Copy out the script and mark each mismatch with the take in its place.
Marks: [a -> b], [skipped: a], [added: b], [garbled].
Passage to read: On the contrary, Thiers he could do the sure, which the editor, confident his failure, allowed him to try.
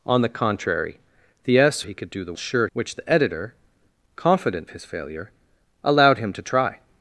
On the contrary, Thiers he could do the sure, which the editor, confident his failure, allowed him to try.